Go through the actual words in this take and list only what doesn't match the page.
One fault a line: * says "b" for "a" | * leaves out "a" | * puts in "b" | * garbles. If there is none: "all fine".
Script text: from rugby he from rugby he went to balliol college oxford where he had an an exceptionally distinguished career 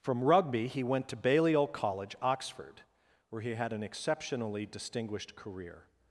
* leaves out "from rugby he"
* leaves out "an"